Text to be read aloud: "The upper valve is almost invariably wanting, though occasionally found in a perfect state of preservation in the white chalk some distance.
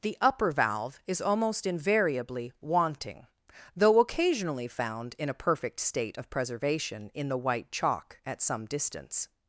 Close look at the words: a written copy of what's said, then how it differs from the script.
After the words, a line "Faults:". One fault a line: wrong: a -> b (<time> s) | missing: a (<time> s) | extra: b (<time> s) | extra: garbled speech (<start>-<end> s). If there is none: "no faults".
"The upper valve is almost invariably wanting, though occasionally found in a perfect state of preservation in the white chalk at some distance.
Faults:
extra: at (8.3 s)